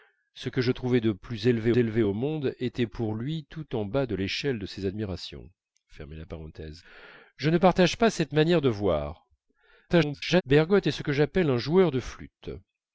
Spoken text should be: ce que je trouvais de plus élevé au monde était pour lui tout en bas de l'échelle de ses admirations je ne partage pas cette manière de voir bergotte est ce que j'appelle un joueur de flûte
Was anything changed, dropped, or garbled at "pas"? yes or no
no